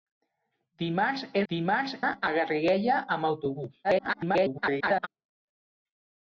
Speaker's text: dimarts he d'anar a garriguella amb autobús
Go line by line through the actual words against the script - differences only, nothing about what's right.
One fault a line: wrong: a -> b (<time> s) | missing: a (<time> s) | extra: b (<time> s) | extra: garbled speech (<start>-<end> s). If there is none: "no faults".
wrong: d'anar -> dimarts (1.5 s)
extra: garbled speech (3.8-5.1 s)